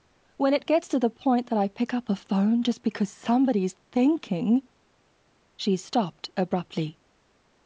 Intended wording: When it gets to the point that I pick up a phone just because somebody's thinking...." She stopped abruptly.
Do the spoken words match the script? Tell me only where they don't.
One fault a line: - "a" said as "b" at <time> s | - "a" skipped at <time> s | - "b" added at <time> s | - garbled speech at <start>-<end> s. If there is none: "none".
none